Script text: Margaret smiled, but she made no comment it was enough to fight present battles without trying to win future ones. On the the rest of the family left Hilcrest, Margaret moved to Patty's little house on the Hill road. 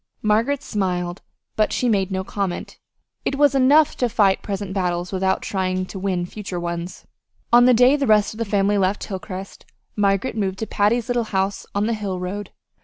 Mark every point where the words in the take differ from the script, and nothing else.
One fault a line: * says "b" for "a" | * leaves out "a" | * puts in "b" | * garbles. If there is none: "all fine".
* puts in "day"